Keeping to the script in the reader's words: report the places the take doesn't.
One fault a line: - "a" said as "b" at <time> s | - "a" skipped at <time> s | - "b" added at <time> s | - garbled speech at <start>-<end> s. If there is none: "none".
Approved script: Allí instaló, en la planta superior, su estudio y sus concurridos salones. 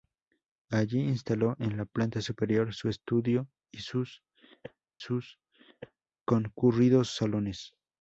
- "sus" added at 5.0 s